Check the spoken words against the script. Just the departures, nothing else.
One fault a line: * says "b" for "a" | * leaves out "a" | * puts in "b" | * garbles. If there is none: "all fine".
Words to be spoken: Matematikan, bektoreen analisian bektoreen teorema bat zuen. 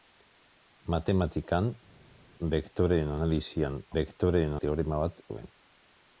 all fine